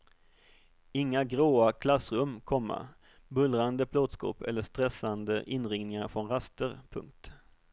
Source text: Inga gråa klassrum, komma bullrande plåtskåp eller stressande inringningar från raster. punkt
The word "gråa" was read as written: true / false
true